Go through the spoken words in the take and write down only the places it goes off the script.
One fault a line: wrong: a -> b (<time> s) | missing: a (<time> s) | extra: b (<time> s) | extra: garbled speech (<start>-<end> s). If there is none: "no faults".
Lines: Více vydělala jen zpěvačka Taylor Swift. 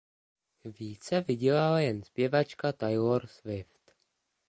no faults